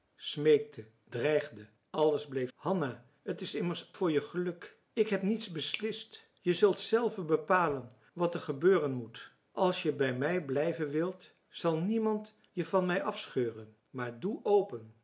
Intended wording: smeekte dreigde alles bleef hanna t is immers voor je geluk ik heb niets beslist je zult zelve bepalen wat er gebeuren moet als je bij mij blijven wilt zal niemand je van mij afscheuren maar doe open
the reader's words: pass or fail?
pass